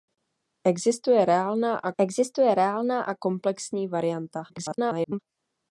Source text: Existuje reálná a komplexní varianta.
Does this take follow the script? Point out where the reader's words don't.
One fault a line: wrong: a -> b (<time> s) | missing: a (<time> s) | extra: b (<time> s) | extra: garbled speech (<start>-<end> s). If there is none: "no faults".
extra: existuje reálná a (2.0 s)
extra: garbled speech (4.5-5.2 s)